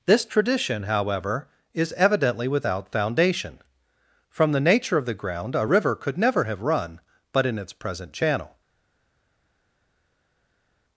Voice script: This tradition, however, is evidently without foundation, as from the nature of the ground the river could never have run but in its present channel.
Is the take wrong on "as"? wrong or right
wrong